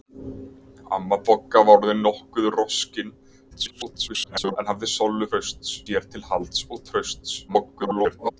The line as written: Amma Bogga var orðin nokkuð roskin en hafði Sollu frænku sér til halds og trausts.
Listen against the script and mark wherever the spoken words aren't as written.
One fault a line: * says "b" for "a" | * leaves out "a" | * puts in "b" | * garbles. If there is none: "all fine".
* garbles
* says "trausts" for "frænku"
* garbles